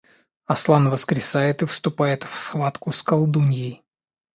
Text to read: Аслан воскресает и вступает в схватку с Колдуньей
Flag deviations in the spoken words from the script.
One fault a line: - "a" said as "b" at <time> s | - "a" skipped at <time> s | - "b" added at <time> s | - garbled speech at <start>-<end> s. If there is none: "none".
none